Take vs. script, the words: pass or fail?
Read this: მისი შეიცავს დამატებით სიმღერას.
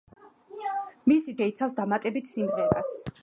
pass